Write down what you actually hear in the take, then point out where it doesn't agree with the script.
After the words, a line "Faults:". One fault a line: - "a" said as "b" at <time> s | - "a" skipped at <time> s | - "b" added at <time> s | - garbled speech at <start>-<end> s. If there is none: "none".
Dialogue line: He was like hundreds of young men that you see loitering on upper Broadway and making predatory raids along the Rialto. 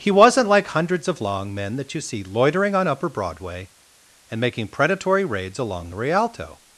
He wasn't like hundreds of long men that you see loitering on upper Broadway and making predatory raids along the Rialto.
Faults:
- "was" said as "wasn't" at 0.1 s
- "young" said as "long" at 1.2 s